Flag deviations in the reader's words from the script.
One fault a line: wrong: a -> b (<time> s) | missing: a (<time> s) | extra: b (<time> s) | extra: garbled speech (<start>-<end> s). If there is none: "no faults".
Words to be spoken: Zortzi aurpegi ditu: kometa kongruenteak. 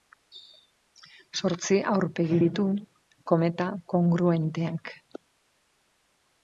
no faults